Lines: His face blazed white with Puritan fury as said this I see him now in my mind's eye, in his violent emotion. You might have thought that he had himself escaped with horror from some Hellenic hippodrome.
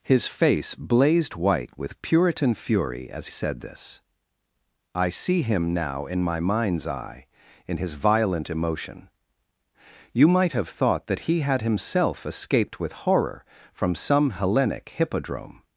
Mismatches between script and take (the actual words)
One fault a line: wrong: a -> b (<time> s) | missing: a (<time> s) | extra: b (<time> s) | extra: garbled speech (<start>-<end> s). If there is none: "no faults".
no faults